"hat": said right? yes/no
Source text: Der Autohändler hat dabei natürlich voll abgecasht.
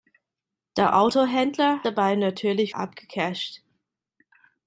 no